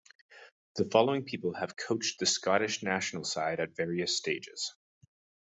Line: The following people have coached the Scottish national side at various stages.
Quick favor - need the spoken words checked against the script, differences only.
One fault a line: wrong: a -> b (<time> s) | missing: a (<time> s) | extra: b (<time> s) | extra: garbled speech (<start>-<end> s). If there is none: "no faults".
no faults